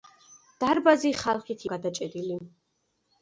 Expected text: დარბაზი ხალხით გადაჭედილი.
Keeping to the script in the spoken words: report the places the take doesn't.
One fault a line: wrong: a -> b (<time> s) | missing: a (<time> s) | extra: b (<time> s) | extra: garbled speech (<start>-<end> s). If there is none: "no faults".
no faults